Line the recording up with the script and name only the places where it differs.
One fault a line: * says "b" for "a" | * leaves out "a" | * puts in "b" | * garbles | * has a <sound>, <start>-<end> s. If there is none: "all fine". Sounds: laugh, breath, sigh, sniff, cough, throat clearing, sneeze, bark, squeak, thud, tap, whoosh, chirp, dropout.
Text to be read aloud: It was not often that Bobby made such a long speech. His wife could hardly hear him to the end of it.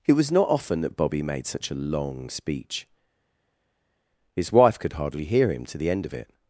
all fine